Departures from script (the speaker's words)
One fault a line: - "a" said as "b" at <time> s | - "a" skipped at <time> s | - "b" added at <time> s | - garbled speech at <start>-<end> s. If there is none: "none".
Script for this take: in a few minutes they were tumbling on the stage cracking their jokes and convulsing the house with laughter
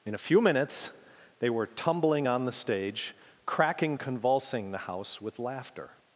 - "their jokes and" skipped at 4.0 s